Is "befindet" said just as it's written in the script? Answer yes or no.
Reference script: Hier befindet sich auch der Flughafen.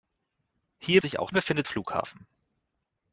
no